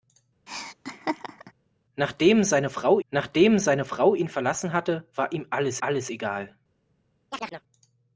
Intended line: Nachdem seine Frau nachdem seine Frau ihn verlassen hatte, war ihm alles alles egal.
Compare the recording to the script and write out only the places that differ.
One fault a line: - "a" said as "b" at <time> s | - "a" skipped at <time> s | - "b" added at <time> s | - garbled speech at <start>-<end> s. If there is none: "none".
none